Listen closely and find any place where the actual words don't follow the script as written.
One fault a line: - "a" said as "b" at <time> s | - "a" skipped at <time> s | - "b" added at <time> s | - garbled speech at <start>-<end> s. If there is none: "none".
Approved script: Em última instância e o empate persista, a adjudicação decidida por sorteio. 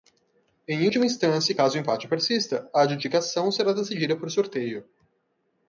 - "caso" added at 1.5 s
- "será" added at 3.5 s